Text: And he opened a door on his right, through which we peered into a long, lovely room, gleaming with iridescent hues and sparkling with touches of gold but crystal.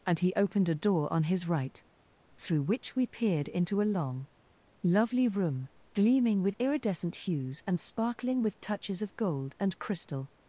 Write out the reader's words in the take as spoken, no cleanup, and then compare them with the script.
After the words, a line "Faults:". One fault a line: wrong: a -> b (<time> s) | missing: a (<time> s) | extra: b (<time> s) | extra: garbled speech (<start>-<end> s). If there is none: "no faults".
And he opened a door on his right, through which we peered into a long, lovely room, gleaming with iridescent hues and sparkling with touches of gold and crystal.
Faults:
wrong: but -> and (9.6 s)